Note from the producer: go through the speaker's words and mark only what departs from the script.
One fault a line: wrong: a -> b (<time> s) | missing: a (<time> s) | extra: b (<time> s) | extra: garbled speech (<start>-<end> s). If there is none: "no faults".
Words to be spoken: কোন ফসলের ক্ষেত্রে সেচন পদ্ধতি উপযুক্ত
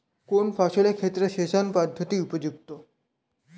no faults